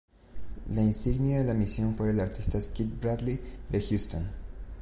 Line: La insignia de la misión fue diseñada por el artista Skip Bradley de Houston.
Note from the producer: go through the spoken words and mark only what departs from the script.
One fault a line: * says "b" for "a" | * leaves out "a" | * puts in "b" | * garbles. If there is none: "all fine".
* leaves out "fue diseñada"